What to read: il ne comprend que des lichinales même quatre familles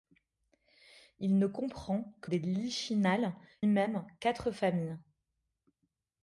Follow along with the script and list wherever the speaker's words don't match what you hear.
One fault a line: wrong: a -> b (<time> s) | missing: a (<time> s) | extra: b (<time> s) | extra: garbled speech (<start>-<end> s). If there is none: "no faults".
no faults